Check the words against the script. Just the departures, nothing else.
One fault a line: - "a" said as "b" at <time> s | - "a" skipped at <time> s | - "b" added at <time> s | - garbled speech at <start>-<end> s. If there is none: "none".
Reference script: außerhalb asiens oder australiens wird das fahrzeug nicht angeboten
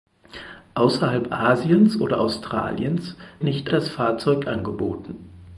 - "wird" said as "nicht" at 3.4 s
- "nicht" skipped at 4.5 s